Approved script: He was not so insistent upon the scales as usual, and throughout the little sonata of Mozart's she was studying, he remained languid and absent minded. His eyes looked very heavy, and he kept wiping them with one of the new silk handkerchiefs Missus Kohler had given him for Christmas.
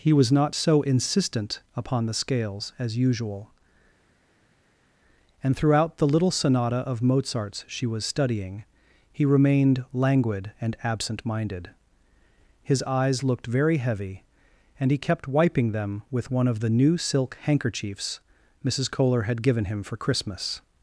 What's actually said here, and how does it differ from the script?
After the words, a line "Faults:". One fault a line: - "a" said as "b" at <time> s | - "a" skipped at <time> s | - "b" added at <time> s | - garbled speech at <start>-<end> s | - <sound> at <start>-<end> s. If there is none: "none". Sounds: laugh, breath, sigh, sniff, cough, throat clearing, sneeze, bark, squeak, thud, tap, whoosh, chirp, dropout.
He was not so insistent upon the scales as usual, and throughout the little sonata of Mozart's she was studying, he remained languid and absent minded. His eyes looked very heavy, and he kept wiping them with one of the new silk handkerchiefs Missus Kohler had given him for Christmas.
Faults:
none